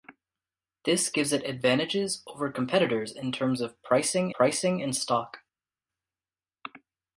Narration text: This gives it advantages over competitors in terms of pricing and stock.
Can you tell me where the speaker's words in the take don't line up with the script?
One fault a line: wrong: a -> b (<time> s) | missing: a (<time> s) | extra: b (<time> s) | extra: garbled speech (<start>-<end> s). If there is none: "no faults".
extra: pricing (4.3 s)